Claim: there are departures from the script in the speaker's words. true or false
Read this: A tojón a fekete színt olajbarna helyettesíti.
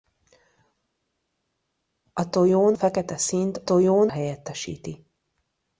true